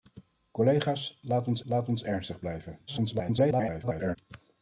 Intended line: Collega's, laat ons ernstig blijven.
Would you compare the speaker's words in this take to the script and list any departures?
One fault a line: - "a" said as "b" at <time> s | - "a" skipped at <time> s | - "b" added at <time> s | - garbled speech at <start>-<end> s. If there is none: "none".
- "laat ons" added at 1.6 s
- garbled speech at 2.9-4.2 s